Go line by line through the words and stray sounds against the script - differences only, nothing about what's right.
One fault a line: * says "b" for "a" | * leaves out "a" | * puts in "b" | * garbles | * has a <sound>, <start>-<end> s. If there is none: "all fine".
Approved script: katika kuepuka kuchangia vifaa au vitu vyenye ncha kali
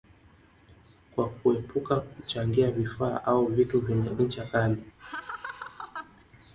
* says "kwa" for "katika"
* has a laugh, 5.0-6.2 s